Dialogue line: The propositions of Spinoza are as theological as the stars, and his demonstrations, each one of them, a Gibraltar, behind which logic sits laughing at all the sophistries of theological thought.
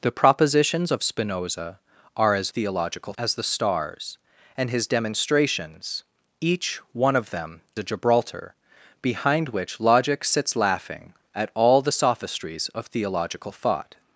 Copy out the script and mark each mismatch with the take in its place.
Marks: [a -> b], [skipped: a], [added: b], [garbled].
The propositions of Spinoza are as theological as the stars, and his demonstrations, each one of them, a Gibraltar, behind which logic sits laughing at all the sophistries of theological thought.